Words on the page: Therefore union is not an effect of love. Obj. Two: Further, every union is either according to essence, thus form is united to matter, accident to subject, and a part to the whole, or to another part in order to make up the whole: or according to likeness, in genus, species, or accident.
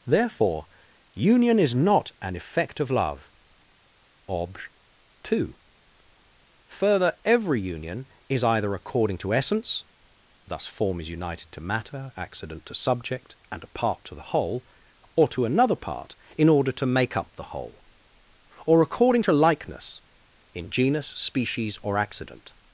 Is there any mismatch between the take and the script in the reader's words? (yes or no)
no